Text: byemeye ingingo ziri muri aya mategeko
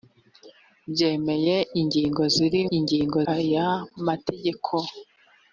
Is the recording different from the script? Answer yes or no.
yes